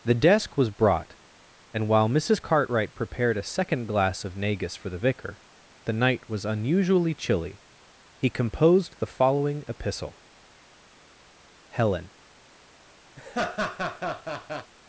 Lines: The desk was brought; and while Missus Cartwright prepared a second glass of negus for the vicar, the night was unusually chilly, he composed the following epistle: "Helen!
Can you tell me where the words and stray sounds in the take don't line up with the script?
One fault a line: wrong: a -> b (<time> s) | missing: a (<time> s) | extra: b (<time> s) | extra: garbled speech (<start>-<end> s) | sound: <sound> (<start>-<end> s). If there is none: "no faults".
sound: laugh (13.2-14.7 s)